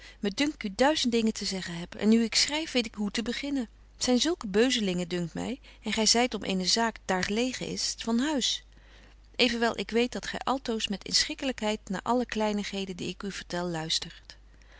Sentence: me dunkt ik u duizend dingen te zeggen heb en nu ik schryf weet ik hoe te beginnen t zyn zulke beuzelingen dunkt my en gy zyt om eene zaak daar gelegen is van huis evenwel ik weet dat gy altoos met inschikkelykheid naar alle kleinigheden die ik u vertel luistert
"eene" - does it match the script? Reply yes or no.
yes